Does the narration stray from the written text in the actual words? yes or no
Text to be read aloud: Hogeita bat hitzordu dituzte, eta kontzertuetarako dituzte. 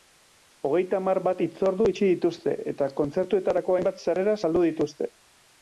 yes